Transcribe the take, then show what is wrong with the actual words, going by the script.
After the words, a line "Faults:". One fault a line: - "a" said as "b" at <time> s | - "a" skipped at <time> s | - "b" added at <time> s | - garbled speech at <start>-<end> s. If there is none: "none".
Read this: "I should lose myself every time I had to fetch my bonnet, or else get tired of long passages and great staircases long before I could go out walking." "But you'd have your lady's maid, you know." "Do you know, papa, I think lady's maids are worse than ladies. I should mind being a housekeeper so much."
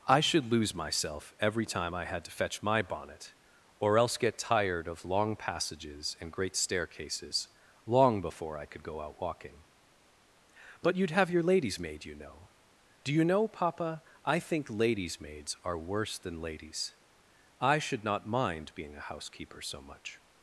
"I should lose myself every time I had to fetch my bonnet, or else get tired of long passages and great staircases long before I could go out walking." "But you'd have your lady's maid, you know." "Do you know, papa, I think lady's maids are worse than ladies. I should not mind being a housekeeper so much."
Faults:
- "not" added at 18.0 s